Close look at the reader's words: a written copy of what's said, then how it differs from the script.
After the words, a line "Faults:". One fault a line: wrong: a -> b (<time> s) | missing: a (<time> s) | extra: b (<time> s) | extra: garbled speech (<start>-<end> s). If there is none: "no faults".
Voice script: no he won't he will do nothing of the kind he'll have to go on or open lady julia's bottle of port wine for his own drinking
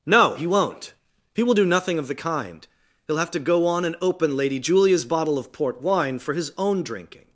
no he won't he will do nothing of the kind he'll have to go on and open lady julia's bottle of port wine for his own drinking
Faults:
wrong: or -> and (3.9 s)